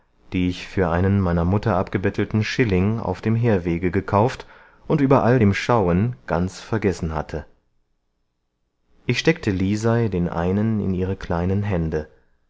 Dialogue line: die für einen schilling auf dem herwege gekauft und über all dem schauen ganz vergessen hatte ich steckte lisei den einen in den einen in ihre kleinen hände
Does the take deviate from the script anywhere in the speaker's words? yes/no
yes